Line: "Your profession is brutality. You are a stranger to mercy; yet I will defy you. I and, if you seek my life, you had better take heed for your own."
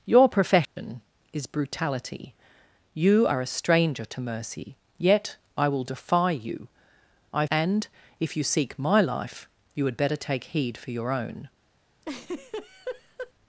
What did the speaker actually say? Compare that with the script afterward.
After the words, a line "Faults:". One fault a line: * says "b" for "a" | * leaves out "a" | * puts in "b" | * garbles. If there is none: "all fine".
"Your profession is brutality. You are a stranger to mercy; yet I will defy you. I and, if you seek my life, you had better take heed for your own."
Faults:
all fine